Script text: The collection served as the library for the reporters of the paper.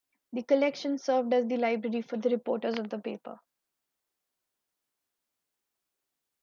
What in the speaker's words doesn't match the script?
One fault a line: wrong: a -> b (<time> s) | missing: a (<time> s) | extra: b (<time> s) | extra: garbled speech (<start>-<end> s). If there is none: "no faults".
no faults